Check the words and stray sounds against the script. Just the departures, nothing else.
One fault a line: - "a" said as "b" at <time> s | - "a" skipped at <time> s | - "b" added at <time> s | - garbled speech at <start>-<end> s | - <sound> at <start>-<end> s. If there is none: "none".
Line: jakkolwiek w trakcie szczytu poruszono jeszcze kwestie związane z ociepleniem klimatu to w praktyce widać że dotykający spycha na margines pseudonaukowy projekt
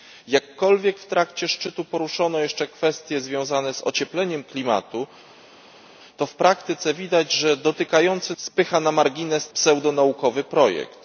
none